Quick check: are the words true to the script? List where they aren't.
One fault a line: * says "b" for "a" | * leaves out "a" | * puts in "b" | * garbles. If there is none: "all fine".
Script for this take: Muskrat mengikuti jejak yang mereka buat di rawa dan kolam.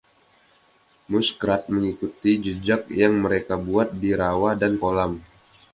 all fine